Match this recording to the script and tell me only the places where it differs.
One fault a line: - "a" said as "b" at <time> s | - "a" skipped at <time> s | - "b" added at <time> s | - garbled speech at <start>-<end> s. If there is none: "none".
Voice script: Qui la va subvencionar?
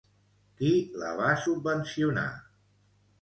none